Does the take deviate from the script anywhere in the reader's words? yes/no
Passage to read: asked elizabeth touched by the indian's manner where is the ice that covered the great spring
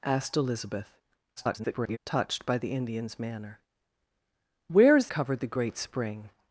yes